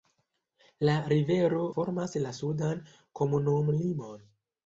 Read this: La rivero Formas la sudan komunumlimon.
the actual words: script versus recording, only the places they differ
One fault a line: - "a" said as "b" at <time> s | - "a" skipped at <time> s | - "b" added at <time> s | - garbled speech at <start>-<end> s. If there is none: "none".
none